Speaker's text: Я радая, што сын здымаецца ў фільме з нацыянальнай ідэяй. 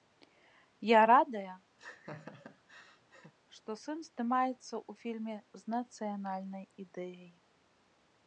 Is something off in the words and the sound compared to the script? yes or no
yes